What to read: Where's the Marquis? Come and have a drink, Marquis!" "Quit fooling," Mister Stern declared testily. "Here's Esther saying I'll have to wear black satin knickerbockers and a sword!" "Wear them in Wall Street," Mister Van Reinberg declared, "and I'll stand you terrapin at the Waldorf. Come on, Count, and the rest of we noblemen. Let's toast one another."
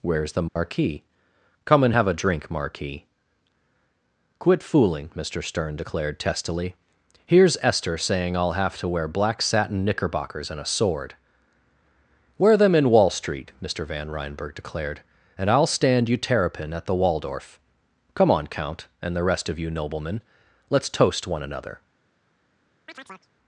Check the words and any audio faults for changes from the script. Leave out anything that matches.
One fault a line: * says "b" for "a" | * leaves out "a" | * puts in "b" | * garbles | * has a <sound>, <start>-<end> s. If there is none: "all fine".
* has a dropout, 0.5-0.6 s
* says "you" for "we"
* has a chirp, 22.9-23.3 s